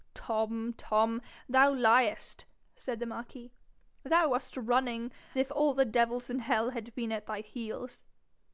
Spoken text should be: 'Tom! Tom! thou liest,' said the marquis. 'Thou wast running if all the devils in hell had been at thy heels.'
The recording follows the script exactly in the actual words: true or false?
true